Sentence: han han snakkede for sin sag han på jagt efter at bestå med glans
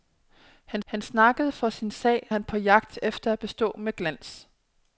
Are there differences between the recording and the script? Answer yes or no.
no